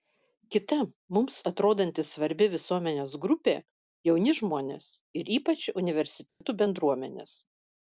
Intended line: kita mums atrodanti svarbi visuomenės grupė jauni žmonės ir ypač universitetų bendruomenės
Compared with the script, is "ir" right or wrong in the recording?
right